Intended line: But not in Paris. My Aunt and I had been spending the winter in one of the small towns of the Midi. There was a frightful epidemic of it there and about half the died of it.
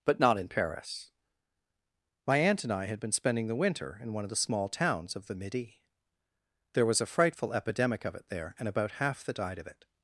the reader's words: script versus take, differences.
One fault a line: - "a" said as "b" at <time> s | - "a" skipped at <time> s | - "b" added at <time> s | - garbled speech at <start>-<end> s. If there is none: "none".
none